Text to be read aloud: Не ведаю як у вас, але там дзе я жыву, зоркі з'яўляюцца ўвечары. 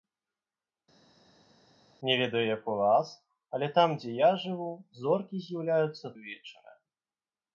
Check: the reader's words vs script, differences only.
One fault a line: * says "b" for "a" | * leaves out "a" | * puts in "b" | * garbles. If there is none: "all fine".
all fine